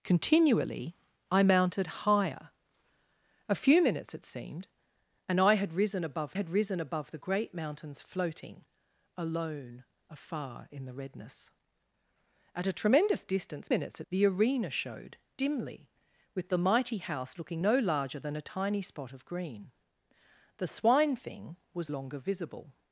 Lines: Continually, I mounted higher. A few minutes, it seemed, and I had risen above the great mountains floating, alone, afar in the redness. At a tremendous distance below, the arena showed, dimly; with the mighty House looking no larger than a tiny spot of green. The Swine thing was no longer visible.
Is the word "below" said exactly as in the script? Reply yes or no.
no